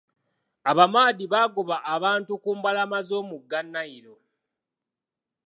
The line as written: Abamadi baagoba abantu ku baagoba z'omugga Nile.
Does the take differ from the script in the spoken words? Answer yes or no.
yes